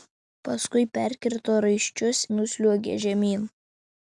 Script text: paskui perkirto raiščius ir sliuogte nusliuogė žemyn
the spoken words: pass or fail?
fail